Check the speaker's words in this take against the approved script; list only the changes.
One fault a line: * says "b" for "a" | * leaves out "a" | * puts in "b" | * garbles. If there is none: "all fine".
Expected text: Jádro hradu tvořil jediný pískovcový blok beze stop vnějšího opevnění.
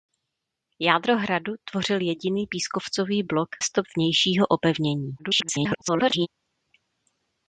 * leaves out "beze"
* garbles